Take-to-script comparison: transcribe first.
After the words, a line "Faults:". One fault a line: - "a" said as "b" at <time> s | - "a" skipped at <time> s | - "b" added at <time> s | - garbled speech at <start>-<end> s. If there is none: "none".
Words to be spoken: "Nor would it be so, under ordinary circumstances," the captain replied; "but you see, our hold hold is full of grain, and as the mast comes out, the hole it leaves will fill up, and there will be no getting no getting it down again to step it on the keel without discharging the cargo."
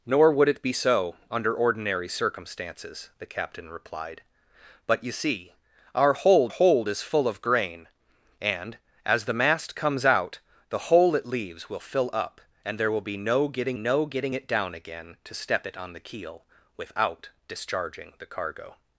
"Nor would it be so, under ordinary circumstances," the captain replied; "but you see, our hold hold is full of grain, and as the mast comes out, the hole it leaves will fill up, and there will be no getting no getting it down again to step it on the keel without discharging the cargo."
Faults:
none